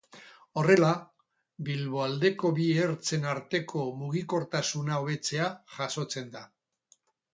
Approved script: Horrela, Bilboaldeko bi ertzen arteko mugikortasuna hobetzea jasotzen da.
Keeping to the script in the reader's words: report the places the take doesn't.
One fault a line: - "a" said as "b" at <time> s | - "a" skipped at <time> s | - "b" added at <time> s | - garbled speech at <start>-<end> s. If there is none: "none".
none